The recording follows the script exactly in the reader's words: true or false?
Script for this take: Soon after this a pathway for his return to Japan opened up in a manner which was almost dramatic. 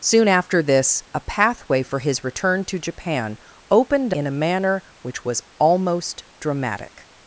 false